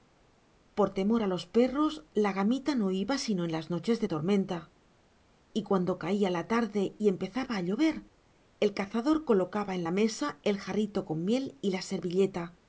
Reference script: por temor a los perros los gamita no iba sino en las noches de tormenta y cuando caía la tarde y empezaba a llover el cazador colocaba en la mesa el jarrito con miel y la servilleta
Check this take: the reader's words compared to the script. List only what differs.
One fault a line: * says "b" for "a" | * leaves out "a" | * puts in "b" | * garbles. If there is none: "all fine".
* says "la" for "los"